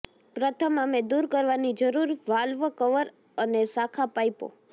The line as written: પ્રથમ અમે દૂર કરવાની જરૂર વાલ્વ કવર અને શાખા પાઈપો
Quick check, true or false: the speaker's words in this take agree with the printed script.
true